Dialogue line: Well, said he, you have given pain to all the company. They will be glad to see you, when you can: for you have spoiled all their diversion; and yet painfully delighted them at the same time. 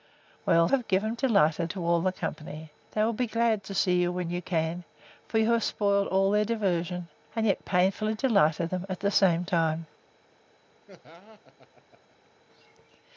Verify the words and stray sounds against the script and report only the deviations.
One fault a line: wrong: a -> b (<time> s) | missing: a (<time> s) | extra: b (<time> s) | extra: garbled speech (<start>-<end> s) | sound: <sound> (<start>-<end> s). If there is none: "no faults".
missing: said he you (0.7 s)
wrong: pain -> delighted (1.1 s)
sound: laugh (10.9-12.3 s)